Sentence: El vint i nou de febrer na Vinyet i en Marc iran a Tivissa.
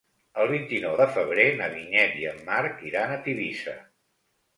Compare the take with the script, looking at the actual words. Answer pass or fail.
pass